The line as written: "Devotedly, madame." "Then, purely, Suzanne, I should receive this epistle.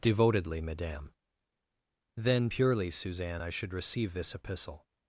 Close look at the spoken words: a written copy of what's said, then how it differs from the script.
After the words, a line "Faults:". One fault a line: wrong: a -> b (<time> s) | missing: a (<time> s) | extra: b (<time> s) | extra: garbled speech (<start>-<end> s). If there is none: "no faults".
"Devotedly, madame." "Then, purely, Suzanne, I should receive this epistle.
Faults:
no faults